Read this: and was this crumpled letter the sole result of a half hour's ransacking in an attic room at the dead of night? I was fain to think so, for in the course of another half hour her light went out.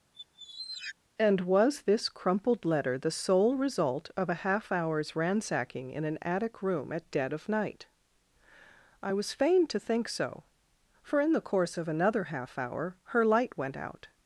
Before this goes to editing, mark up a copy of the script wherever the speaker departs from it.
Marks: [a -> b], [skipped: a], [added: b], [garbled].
and was this crumpled letter the sole result of a half hour's ransacking in an attic room at [skipped: the] dead of night? I was fain to think so, for in the course of another half hour her light went out.